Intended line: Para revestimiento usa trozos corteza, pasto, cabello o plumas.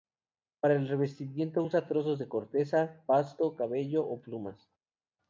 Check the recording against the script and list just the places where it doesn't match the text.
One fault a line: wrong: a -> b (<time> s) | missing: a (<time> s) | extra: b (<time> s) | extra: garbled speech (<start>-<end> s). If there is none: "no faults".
extra: el (0.7 s)
extra: de (2.2 s)